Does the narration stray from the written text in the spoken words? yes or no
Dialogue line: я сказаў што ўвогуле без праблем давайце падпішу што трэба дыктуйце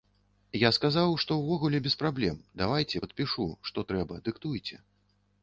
no